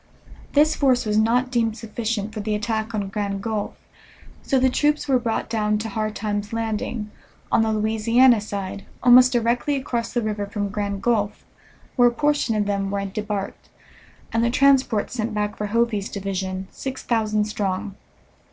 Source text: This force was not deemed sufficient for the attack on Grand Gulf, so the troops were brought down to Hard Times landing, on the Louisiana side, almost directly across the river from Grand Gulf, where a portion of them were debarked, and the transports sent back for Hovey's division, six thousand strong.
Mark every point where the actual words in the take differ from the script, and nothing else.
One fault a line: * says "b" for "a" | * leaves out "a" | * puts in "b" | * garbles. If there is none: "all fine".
all fine